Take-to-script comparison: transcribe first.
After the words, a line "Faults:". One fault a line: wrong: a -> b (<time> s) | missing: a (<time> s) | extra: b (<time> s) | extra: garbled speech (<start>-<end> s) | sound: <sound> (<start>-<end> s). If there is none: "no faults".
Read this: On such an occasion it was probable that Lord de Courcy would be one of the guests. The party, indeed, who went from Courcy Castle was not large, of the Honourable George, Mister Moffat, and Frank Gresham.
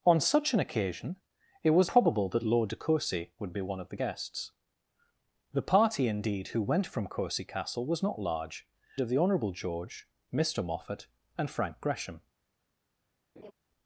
On such an occasion it was probable that Lord de Courcy would be one of the guests. The party, indeed, who went from Courcy Castle was not large, of the Honourable George, Mister Moffat, and Frank Gresham.
Faults:
sound: laugh (13.4-13.5 s)